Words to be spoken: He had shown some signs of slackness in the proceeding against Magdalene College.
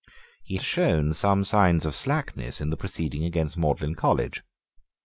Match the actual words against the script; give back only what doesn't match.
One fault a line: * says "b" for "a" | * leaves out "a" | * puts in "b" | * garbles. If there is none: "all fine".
* leaves out "had"